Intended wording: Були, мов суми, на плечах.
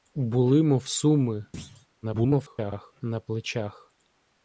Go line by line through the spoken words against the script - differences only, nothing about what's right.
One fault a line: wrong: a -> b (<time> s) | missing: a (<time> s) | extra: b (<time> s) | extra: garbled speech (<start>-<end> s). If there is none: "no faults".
extra: garbled speech (2.0-2.9 s)